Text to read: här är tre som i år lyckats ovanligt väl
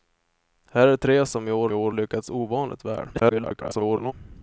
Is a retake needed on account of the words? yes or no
yes